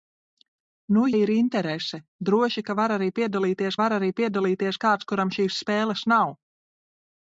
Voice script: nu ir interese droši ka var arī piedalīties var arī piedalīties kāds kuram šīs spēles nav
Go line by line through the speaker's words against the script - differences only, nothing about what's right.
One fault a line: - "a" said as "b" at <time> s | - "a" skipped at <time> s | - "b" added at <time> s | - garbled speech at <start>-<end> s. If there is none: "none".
none